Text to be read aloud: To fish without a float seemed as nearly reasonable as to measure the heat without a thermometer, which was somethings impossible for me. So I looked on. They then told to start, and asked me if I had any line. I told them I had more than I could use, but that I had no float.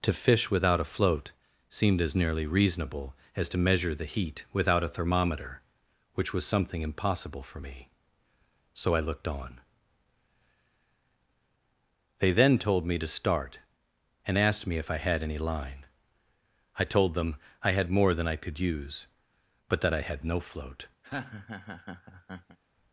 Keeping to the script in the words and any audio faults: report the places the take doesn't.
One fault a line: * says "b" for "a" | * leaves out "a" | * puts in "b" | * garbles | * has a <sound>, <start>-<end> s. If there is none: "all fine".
* says "something" for "somethings"
* puts in "me"
* has a laugh, 21.0-22.6 s